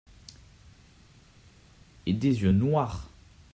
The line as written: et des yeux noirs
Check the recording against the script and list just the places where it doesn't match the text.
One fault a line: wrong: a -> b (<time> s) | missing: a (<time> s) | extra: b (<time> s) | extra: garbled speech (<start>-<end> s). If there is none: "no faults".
no faults